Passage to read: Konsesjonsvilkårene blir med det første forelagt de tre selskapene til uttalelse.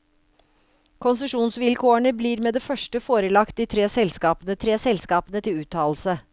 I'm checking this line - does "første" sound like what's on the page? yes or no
yes